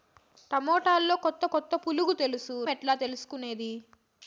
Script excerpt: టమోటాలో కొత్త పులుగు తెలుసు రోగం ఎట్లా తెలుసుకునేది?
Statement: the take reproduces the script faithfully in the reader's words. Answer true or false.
false